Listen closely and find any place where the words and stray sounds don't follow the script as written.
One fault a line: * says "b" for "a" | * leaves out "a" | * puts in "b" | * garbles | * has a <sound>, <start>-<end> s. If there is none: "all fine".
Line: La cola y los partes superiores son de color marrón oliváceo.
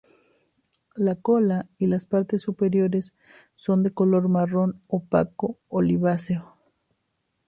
* says "las" for "los"
* puts in "opaco"